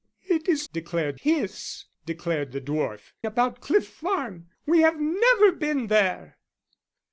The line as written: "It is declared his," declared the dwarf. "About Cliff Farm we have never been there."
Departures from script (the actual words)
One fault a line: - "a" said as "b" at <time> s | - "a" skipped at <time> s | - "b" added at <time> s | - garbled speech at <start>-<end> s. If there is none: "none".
none